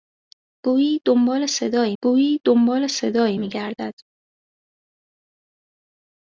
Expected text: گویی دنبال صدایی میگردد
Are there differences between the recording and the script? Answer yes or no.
yes